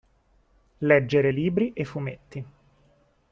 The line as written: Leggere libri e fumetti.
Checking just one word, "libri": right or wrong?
right